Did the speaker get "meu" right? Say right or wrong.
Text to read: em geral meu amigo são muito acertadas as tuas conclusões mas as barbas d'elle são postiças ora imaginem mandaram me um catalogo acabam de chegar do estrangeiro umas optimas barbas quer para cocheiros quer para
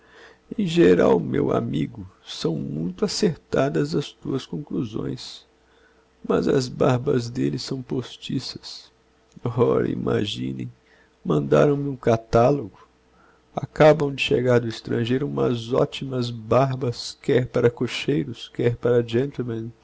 right